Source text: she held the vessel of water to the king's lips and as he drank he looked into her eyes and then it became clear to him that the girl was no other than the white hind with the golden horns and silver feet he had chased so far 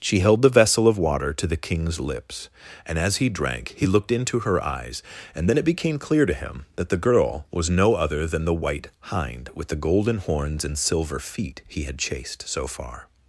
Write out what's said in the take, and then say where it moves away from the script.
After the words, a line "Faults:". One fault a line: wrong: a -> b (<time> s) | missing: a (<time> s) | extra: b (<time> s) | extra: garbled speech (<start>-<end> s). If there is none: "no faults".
she held the vessel of water to the king's lips and as he drank he looked into her eyes and then it became clear to him that the girl was no other than the white hind with the golden horns and silver feet he had chased so far
Faults:
no faults